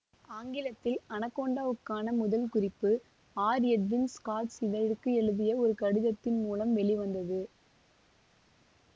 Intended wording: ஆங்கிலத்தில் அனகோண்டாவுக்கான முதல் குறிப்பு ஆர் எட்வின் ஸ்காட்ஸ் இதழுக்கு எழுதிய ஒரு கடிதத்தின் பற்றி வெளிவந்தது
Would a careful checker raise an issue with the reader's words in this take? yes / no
yes